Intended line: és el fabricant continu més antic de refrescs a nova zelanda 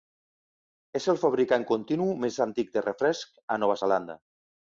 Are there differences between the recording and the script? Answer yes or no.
no